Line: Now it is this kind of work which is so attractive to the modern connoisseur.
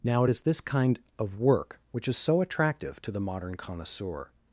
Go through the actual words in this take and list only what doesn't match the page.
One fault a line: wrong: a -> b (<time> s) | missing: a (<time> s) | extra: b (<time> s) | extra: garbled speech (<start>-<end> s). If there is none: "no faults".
no faults